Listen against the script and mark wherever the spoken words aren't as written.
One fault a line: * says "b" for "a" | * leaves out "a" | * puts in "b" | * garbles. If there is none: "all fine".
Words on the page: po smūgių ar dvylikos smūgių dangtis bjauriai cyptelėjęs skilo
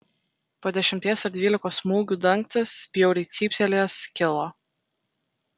* says "dešimties" for "smūgių"